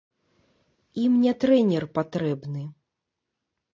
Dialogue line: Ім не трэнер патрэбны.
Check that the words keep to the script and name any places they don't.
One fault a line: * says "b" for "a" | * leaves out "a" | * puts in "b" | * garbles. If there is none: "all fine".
all fine